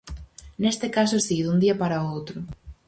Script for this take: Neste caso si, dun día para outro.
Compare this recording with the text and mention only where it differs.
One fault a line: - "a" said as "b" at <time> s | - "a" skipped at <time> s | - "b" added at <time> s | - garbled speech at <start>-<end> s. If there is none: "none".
none